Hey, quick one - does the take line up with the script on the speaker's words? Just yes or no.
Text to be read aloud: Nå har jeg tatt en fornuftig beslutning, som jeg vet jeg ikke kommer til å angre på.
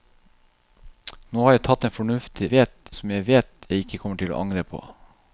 no